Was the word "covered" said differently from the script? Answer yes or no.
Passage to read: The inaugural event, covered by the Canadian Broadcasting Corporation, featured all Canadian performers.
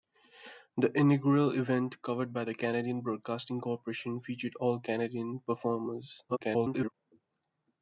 no